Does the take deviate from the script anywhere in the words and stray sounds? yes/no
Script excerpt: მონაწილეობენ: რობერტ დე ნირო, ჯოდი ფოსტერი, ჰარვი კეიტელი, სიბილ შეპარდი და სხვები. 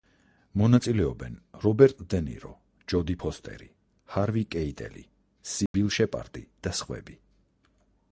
yes